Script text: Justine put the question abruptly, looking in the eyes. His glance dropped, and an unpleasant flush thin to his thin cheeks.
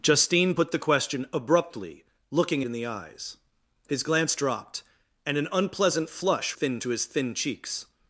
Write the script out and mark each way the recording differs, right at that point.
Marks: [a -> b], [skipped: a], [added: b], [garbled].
Justine put the question abruptly, looking in the eyes. His glance dropped, and an unpleasant flush thin to his thin cheeks.